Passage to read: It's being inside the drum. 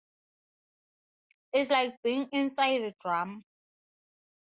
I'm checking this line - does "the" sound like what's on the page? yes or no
no